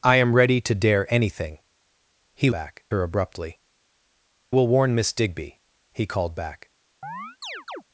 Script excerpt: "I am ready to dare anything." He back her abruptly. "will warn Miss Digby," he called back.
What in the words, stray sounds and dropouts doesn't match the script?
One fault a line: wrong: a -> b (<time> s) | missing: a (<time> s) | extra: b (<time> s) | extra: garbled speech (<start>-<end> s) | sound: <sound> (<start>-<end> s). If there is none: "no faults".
sound: chirp (7.0-7.8 s)